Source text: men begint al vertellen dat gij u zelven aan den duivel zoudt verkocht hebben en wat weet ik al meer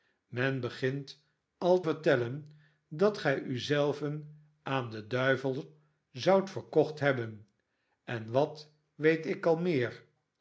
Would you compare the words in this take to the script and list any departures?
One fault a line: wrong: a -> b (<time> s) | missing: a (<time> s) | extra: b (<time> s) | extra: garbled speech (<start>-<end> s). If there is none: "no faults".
no faults